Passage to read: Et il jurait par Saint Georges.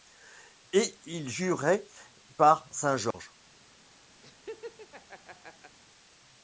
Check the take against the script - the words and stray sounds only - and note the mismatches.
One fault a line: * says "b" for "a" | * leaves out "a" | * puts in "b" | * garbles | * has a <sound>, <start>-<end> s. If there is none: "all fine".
* has a laugh, 4.2-5.8 s